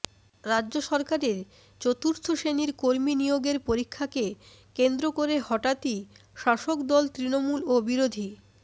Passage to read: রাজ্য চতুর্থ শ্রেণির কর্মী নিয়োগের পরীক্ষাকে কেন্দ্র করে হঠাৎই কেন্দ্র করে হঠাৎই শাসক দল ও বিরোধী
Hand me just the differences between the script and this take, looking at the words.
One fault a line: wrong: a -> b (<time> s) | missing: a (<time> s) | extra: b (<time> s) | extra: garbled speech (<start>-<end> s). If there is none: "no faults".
extra: সরকারের (0.9 s)
missing: কেন্দ্র করে হঠাৎই (6.0 s)
extra: তৃণমূল (7.2 s)